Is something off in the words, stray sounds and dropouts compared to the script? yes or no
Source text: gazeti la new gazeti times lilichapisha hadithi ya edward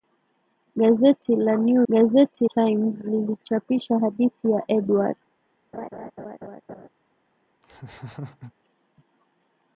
yes